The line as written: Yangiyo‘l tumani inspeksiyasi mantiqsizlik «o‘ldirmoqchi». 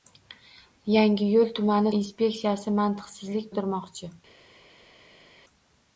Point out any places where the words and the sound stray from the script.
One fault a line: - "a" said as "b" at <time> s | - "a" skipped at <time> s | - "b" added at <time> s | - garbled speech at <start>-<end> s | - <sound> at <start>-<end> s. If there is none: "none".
none